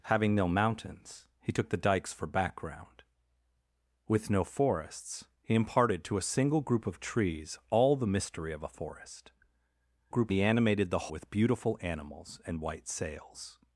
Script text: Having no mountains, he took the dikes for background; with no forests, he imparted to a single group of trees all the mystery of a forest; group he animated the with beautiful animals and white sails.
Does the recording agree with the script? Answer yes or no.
yes